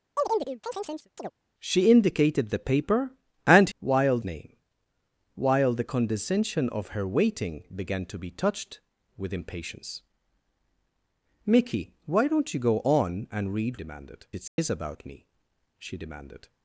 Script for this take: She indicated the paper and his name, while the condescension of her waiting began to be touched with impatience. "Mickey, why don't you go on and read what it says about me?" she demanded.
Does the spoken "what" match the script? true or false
false